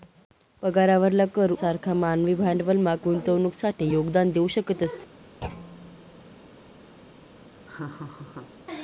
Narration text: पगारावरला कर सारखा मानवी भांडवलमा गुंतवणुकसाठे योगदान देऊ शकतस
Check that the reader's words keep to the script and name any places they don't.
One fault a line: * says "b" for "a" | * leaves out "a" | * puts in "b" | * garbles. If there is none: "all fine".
all fine